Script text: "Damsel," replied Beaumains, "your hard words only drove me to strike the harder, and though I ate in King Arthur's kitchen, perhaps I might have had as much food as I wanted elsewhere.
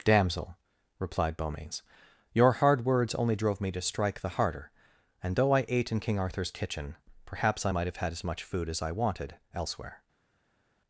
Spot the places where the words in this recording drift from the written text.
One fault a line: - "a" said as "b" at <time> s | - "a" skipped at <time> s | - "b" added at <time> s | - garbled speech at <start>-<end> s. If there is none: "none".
none